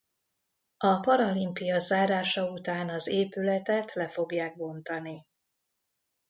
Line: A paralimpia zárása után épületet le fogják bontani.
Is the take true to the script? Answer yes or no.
no